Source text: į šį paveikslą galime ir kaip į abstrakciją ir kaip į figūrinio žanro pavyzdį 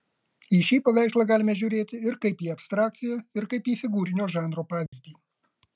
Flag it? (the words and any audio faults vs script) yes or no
yes